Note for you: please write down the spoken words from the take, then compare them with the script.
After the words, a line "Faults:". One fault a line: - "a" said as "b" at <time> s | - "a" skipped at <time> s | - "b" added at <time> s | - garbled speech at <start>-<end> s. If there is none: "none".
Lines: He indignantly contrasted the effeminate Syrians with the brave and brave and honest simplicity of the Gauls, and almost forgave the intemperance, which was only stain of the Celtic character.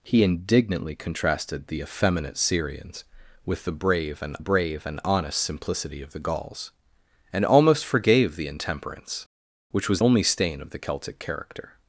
He indignantly contrasted the effeminate Syrians with the brave and brave and honest simplicity of the Gauls, and almost forgave the intemperance, which was only stain of the Celtic character.
Faults:
none